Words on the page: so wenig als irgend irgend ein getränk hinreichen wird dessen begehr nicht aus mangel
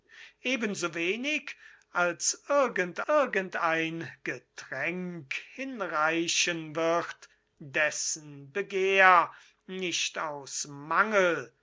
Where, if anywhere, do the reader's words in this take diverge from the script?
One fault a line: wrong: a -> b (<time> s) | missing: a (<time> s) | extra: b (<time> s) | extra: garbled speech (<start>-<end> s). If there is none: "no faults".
no faults